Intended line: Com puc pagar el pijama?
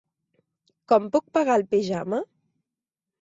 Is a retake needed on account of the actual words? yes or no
no